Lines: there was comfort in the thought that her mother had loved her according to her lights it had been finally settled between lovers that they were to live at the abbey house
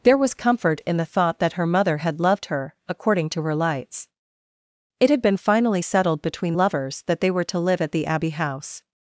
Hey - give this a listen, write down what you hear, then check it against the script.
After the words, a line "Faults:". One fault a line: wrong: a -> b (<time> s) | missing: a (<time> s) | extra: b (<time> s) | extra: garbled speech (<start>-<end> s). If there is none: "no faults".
there was comfort in the thought that her mother had loved her according to her lights it had been finally settled between lovers that they were to live at the abbey house
Faults:
no faults